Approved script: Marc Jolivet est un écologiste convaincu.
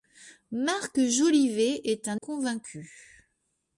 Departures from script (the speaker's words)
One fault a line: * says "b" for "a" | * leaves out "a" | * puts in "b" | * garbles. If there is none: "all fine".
* leaves out "écologiste"